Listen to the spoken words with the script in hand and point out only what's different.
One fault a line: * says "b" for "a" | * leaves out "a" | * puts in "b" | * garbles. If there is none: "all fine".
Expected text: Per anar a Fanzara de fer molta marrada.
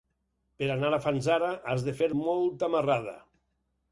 * puts in "has"